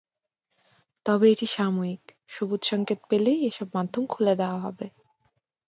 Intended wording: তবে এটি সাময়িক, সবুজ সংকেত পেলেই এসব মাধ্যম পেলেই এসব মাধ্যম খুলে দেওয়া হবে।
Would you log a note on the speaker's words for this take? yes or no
yes